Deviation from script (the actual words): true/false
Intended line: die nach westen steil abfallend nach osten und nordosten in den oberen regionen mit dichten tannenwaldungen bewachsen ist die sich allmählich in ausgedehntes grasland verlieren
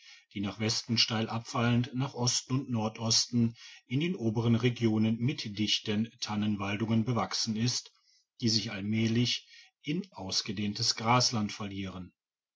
false